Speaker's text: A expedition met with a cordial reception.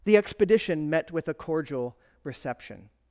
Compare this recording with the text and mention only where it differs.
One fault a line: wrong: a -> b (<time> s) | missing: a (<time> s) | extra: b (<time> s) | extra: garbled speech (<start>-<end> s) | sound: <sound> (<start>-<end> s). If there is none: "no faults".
wrong: A -> The (0.0 s)